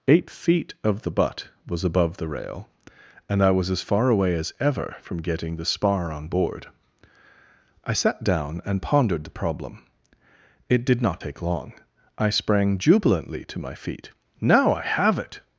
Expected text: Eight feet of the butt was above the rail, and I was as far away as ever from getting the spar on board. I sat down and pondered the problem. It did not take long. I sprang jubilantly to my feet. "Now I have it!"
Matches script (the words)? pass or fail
pass